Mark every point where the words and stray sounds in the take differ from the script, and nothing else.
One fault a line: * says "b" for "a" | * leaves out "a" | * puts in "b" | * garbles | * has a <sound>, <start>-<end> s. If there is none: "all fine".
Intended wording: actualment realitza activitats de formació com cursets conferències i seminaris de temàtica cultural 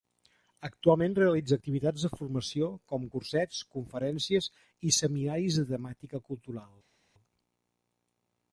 all fine